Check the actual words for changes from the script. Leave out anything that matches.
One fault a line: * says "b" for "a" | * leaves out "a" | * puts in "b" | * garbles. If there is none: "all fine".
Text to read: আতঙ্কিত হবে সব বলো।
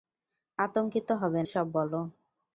all fine